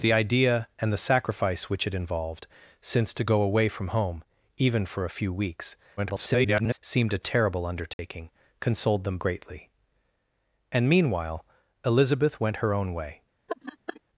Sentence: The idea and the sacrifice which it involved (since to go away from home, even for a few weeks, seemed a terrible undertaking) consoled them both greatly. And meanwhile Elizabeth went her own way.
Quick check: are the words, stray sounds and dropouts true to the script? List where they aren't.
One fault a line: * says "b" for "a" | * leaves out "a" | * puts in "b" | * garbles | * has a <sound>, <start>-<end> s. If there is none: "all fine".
* garbles
* has a dropout, 7.9-8.0 s
* leaves out "both"
* has a laugh, 13.5-14.0 s